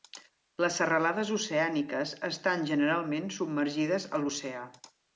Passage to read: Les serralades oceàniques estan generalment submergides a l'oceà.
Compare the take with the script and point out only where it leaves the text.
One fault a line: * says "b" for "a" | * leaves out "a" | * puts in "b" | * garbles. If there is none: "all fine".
all fine